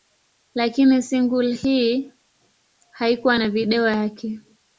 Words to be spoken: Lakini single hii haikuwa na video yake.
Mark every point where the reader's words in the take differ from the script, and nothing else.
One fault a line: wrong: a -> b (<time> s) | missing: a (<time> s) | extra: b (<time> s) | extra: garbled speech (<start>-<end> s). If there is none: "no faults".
no faults